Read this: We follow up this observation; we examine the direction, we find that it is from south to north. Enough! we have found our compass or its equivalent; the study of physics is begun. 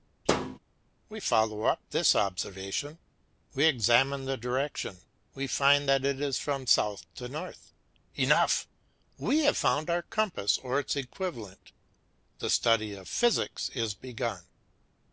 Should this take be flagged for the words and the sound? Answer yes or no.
yes